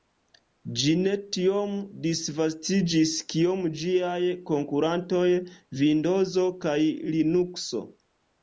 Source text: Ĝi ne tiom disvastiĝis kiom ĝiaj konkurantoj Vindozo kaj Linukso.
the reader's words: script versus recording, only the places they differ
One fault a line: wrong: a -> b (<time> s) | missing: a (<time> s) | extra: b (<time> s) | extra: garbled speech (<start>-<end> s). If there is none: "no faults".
no faults